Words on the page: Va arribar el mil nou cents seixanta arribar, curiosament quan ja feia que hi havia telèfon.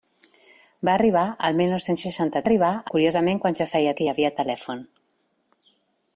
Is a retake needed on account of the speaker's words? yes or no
no